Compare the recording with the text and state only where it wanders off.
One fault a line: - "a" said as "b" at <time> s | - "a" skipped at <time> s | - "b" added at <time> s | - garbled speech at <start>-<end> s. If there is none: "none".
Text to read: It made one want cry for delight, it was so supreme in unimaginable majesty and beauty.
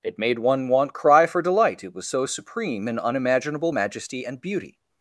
none